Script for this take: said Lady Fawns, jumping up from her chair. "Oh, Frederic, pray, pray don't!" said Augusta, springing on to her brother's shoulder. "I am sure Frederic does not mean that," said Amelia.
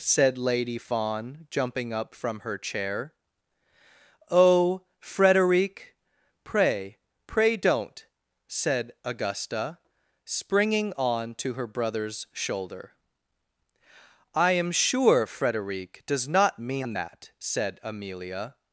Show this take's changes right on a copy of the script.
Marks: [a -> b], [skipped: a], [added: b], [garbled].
said Lady [Fawns, -> Fawn] jumping up from her chair. "Oh, Frederic, pray, pray don't!" said Augusta, springing on to her brother's shoulder. "I am sure Frederic does not mean that," said Amelia.